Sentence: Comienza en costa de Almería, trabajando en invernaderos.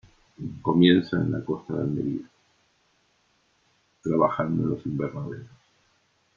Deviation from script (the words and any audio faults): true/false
true